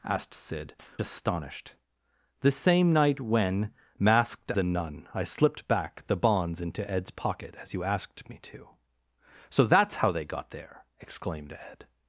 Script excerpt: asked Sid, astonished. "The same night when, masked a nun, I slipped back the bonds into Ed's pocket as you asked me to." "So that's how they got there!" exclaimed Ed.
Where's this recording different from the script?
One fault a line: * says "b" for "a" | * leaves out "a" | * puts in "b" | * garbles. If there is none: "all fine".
all fine